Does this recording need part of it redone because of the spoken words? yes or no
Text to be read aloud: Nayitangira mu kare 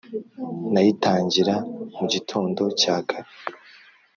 yes